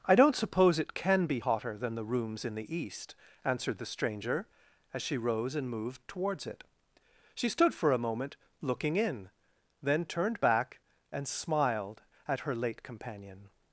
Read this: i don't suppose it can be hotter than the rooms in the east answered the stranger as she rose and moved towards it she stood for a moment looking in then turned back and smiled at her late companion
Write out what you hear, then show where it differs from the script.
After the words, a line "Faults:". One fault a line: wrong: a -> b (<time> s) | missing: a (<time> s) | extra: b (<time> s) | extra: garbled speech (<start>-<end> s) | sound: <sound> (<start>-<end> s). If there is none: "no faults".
i don't suppose it can be hotter than the rooms in the east answered the stranger as she rose and moved towards it she stood for a moment looking in then turned back and smiled at her late companion
Faults:
no faults